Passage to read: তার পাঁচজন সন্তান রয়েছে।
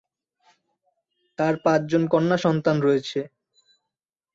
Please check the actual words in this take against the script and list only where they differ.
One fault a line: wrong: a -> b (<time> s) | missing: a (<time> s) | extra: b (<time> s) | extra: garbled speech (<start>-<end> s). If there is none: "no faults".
extra: কন্যা (2.1 s)